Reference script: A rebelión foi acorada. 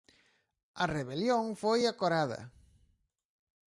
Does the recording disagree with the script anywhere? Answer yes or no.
no